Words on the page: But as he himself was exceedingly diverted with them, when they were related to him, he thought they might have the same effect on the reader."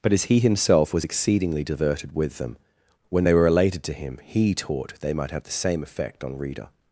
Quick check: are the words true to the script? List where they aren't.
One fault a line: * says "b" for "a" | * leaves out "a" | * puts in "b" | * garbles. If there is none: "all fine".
* says "taught" for "thought"
* leaves out "the"